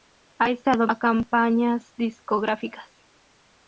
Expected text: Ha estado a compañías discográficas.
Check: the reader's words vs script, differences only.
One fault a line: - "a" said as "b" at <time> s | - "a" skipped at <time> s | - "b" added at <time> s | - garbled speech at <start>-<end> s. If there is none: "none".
none